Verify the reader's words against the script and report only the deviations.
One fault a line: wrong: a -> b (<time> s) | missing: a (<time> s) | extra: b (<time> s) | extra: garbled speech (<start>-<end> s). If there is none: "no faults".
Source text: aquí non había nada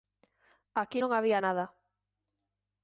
no faults